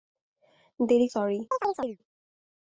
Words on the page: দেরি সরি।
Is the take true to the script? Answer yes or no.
yes